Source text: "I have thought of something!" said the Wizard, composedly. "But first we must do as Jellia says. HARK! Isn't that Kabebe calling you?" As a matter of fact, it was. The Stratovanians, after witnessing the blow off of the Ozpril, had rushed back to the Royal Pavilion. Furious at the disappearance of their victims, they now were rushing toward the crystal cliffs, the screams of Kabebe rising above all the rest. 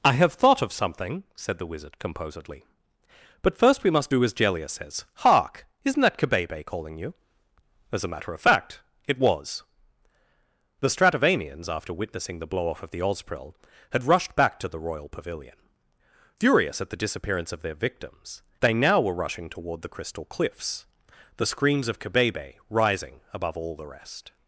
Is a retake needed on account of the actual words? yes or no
no